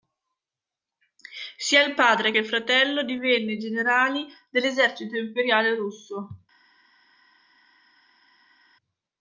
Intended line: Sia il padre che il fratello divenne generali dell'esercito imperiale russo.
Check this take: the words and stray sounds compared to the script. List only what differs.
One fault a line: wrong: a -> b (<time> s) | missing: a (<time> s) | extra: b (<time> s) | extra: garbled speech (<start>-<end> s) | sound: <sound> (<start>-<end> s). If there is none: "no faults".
missing: che (2.3 s)